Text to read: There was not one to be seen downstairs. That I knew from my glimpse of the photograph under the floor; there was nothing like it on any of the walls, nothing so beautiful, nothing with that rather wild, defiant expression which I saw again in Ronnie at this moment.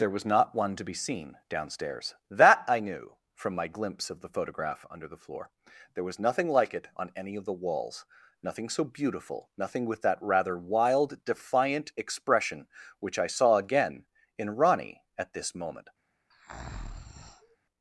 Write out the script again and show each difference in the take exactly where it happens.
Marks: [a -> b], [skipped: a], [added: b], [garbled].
There was not one to be seen downstairs. That I knew from my glimpse of the photograph under the floor; there was nothing like it on any of the walls, nothing so beautiful, nothing with that rather wild, defiant expression which I saw again in Ronnie at this moment.